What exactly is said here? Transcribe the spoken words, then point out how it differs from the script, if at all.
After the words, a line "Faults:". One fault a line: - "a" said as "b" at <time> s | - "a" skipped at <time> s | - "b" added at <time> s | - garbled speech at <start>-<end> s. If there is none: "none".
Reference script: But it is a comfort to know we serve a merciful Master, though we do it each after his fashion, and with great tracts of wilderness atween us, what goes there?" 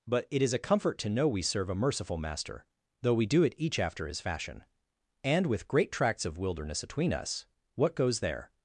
But it is a comfort to know we serve a merciful Master, though we do it each after his fashion, and with great tracts of wilderness atween us, what goes there?"
Faults:
none